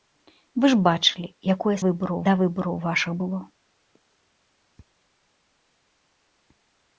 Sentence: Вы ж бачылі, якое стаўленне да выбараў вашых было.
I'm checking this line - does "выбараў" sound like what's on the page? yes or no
yes